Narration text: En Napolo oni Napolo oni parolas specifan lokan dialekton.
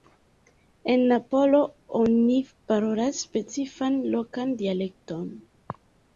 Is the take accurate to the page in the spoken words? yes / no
no